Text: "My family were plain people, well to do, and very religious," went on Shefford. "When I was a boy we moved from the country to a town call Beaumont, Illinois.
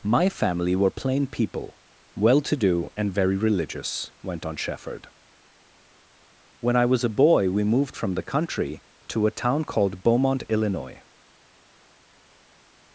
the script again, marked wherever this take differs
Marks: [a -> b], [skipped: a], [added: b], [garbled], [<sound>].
"My family were plain people, well to do, and very religious," went on Shefford. "When I was a boy we moved from the country to a town [call -> called] Beaumont, Illinois.